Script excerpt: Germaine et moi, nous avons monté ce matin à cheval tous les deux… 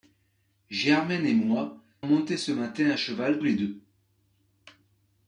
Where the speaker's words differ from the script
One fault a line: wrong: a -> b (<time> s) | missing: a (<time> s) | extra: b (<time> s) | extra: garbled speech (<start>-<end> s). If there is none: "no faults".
missing: nous avons (1.8 s)
missing: tous (3.4 s)